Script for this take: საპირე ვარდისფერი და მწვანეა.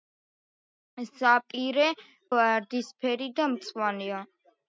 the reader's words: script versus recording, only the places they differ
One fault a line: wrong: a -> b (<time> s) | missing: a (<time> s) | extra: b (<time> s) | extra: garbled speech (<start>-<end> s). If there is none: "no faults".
no faults